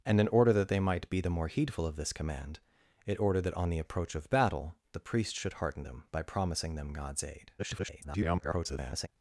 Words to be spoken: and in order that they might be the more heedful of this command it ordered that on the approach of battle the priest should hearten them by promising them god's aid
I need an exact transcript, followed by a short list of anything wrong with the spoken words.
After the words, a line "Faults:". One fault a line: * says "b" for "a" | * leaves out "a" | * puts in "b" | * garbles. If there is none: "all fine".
and in order that they might be the more heedful of this command it ordered that on the approach of battle the priest should hearten them by promising them god's aid [garbled]
Faults:
* garbles